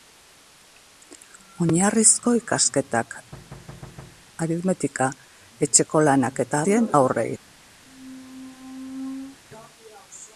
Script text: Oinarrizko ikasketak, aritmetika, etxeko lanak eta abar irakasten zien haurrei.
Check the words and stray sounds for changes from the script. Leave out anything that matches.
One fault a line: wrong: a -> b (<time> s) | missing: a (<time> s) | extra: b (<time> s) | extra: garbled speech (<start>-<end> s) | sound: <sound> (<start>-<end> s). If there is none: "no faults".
sound: thud (3.3-4.3 s)
missing: abar irakasten (6.6 s)
sound: squeak (7.8-9.4 s)